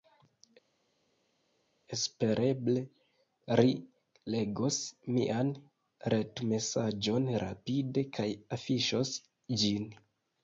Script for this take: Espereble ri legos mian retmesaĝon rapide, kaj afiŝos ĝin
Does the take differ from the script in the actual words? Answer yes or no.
no